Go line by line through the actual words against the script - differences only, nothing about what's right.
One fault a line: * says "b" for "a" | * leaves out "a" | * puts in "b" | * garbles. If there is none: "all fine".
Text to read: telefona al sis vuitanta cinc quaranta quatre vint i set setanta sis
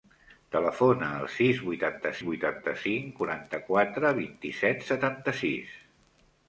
* puts in "vuitanta"